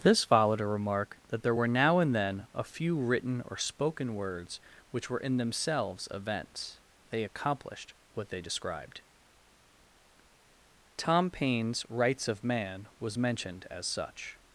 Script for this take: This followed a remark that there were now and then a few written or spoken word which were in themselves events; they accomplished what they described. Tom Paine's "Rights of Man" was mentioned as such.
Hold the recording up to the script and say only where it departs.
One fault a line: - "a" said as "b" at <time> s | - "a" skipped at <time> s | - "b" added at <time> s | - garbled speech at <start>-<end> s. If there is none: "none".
- "word" said as "words" at 4.1 s